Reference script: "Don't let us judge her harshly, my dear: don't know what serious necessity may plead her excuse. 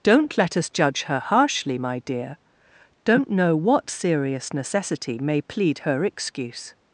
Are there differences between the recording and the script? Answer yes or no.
no